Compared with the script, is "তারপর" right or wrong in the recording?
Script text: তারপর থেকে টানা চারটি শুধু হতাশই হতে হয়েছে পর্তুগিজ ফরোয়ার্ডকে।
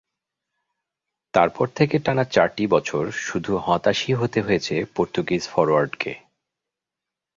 right